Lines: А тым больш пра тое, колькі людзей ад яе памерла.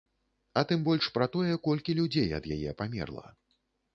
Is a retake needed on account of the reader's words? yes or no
no